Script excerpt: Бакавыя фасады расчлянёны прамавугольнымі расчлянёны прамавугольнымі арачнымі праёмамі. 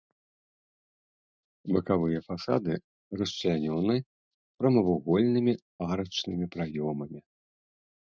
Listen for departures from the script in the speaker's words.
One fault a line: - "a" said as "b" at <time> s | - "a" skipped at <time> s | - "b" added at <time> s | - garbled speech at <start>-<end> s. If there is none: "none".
- "расчлянёны прамавугольнымі" skipped at 5.5 s